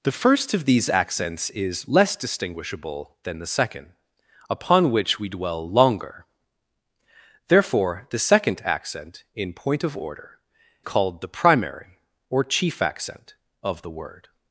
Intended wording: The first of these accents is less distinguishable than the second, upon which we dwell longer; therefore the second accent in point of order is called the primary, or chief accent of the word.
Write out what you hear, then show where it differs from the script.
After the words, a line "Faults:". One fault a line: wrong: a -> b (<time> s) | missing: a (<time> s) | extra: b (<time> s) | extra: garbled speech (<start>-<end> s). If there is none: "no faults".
The first of these accents is less distinguishable than the second, upon which we dwell longer; therefore the second accent in point of order called the primary, or chief accent of the word.
Faults:
missing: is (10.4 s)